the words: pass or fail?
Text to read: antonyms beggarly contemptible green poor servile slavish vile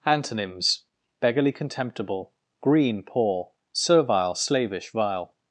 pass